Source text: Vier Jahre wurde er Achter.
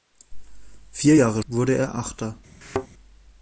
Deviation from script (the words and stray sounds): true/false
true